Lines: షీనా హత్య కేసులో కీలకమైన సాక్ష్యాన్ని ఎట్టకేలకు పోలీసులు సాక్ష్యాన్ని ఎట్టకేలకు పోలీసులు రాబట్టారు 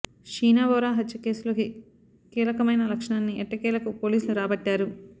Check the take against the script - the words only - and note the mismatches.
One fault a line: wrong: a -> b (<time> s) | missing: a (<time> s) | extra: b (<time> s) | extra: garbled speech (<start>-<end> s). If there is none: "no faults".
extra: బోరా (0.7 s)
missing: సాక్ష్యాన్ని ఎట్టకేలకు పోలీసులు (4.4 s)